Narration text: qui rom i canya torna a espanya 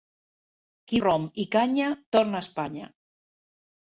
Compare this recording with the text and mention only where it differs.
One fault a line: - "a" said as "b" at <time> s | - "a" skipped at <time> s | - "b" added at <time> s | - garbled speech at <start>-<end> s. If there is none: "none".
none